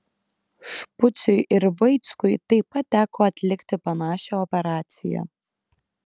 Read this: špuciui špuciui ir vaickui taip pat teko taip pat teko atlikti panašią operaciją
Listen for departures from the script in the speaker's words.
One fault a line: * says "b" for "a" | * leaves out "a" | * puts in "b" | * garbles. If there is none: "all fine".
* leaves out "špuciui"
* leaves out "taip pat teko"